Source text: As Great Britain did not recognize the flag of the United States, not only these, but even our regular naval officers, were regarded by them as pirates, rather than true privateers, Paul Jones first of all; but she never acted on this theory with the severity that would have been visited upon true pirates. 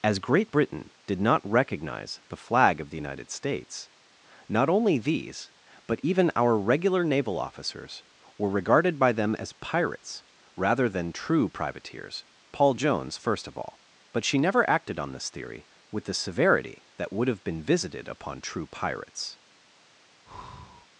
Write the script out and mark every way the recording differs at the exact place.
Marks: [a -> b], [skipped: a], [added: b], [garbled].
As Great Britain did not recognize the flag of the United States, not only these, but even our regular naval officers, were regarded by them as pirates, rather than true privateers, Paul Jones first of all; but she never acted on this theory with the severity that would have been visited upon true pirates.